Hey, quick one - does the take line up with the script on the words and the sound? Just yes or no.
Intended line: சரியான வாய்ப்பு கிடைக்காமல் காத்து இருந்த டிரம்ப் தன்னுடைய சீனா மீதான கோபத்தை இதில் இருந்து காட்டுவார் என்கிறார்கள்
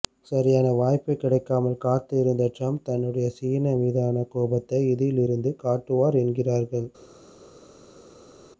yes